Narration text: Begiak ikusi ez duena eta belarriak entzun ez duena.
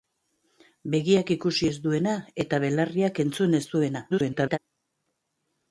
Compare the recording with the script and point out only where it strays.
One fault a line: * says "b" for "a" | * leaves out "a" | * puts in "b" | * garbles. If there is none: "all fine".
* garbles